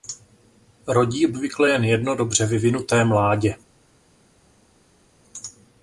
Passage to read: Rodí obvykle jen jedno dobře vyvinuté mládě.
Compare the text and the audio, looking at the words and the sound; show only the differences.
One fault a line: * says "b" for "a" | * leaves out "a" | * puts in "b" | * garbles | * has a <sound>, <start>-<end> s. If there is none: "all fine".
all fine